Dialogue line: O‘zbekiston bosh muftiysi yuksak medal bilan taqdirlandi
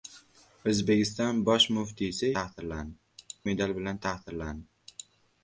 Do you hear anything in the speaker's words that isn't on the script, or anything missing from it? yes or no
yes